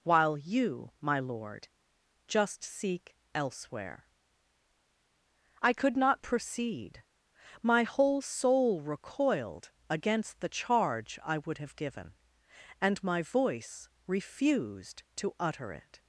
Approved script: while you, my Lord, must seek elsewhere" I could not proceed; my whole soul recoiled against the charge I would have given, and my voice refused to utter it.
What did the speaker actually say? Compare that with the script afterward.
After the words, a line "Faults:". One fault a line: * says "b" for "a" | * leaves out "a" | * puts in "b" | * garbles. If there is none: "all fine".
while you, my Lord, just seek elsewhere" I could not proceed; my whole soul recoiled against the charge I would have given, and my voice refused to utter it.
Faults:
* says "just" for "must"